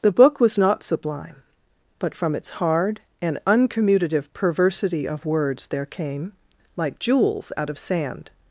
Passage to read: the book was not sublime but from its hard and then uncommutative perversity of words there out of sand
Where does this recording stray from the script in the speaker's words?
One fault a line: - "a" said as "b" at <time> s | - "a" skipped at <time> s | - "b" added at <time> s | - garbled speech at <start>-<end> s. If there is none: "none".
- "then" skipped at 3.4 s
- "came like jewels" added at 5.8 s